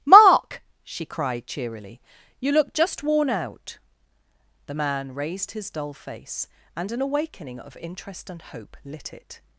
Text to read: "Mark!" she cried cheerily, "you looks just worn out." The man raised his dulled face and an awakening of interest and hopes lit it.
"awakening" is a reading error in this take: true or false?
false